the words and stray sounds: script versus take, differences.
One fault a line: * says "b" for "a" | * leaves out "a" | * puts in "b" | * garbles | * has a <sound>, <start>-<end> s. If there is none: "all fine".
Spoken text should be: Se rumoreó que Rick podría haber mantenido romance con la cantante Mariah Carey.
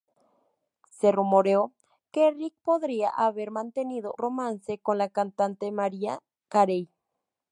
all fine